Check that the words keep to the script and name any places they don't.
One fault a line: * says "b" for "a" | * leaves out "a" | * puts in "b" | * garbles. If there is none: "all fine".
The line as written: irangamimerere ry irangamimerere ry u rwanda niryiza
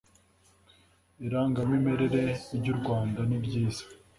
* leaves out "irangamimerere ry"